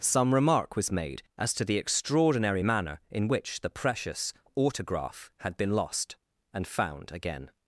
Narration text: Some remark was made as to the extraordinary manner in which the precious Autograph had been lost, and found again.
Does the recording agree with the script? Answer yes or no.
yes